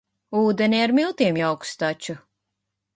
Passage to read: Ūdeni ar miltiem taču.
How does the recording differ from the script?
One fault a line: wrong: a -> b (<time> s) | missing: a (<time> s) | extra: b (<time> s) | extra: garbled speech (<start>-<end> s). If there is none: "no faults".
extra: jauks (1.4 s)